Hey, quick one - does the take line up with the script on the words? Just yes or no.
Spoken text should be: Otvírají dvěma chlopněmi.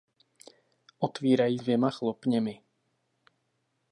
yes